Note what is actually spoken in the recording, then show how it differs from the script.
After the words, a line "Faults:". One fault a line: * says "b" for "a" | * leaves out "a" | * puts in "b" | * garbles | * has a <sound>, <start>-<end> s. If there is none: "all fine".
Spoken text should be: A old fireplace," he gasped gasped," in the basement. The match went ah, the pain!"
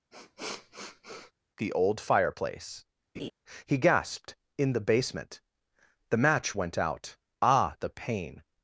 The old fireplace," he gasped," in the basement. The match went out ah, the pain!"
Faults:
* has a sniff, 0.1-1.3 s
* says "The" for "A"
* has a laugh, 3.1-3.3 s
* leaves out "gasped"
* puts in "out"